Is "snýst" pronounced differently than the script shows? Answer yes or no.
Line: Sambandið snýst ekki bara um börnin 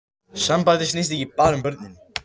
no